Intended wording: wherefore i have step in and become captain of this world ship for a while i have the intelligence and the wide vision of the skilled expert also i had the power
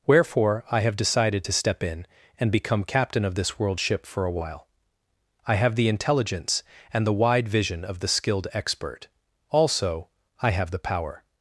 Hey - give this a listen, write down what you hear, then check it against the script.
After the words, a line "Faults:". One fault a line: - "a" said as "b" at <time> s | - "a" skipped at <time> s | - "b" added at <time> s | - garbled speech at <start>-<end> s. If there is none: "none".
wherefore i have decided to step in and become captain of this world ship for a while i have the intelligence and the wide vision of the skilled expert also i have the power
Faults:
- "decided to" added at 0.9 s
- "had" said as "have" at 10.5 s